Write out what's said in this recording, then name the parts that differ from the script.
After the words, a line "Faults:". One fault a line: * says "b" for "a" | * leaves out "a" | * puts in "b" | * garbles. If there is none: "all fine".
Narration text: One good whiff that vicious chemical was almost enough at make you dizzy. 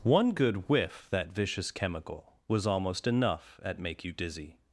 One good whiff that vicious chemical was almost enough at make you dizzy.
Faults:
all fine